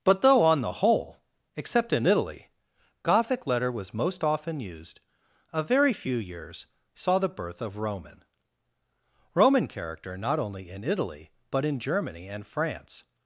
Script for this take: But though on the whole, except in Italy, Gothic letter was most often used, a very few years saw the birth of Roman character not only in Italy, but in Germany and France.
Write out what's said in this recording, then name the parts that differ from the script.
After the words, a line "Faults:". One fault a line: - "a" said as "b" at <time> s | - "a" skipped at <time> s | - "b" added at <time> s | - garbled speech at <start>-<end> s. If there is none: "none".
But though on the whole, except in Italy, Gothic letter was most often used, a very few years saw the birth of Roman Roman character not only in Italy, but in Germany and France.
Faults:
- "Roman" added at 9.3 s